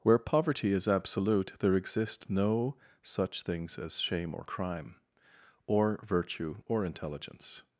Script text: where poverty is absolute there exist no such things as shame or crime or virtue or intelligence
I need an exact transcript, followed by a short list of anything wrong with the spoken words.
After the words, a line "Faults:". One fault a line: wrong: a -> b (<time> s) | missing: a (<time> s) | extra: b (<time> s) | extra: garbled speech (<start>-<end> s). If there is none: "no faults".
where poverty is absolute there exist no such things as shame or crime or virtue or intelligence
Faults:
no faults